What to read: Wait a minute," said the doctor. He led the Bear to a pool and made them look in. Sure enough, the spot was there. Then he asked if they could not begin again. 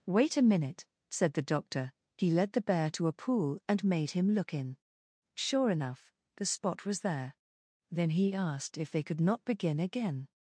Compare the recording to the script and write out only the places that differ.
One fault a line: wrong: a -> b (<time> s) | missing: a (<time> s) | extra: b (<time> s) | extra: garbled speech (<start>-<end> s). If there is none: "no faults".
wrong: them -> him (4.1 s)